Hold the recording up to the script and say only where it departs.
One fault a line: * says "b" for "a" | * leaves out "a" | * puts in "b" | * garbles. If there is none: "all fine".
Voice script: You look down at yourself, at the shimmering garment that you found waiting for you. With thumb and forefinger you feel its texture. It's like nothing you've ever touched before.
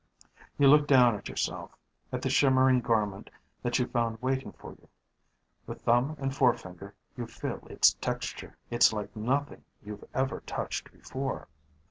all fine